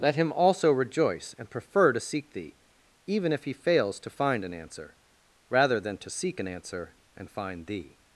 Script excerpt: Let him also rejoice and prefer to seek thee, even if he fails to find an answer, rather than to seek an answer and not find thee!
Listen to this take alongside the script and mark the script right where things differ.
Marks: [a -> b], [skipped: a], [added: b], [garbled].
Let him also rejoice and prefer to seek thee, even if he fails to find an answer, rather than to seek an answer and [skipped: not] find thee!